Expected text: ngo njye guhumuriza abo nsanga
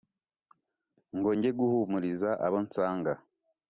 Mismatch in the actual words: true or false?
false